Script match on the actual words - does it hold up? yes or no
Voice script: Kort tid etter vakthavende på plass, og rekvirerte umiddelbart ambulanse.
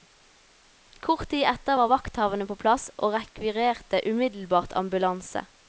no